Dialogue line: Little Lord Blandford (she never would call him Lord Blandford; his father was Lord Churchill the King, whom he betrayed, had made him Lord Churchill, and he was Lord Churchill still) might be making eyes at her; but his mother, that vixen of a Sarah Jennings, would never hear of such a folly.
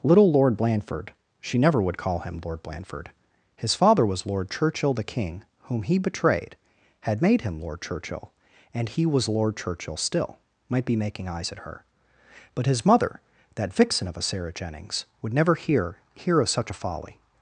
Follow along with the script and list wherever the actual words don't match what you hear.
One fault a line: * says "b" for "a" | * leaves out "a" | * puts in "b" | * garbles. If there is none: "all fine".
* puts in "hear"